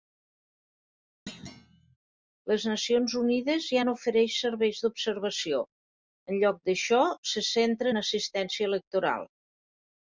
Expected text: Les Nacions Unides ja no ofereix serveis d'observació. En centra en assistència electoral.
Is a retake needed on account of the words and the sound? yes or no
yes